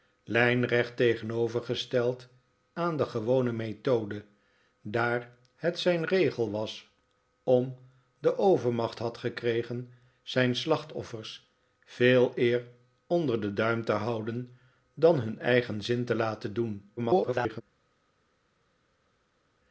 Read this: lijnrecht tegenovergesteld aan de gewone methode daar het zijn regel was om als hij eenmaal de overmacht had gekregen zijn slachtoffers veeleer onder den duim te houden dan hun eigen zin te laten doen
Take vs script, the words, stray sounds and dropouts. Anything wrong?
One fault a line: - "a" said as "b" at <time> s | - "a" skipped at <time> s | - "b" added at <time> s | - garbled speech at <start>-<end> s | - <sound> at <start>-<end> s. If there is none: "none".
- "als hij eenmaal" skipped at 7.8 s
- garbled speech at 17.0-17.6 s